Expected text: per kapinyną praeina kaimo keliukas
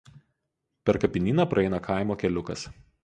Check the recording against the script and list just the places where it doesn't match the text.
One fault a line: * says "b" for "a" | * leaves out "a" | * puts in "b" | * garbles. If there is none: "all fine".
all fine